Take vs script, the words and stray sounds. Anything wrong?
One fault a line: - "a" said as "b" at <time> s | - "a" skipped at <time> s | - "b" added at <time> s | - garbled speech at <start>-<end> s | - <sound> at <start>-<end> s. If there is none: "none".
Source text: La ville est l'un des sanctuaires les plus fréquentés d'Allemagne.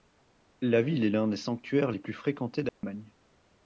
- dropout at 2.7-2.8 s